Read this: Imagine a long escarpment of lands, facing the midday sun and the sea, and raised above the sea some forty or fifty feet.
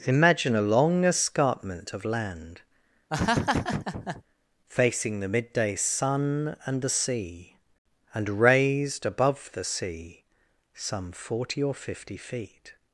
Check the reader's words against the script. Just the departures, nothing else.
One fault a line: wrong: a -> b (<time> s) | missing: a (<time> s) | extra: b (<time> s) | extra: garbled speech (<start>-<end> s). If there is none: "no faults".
wrong: lands -> land (2.0 s)